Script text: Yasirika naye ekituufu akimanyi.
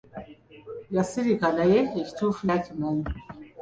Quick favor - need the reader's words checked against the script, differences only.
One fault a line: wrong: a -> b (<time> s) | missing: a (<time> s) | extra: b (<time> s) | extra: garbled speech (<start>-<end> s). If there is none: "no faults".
no faults